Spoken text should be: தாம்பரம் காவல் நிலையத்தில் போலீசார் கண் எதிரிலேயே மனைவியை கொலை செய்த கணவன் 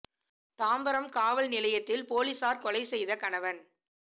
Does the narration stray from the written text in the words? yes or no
yes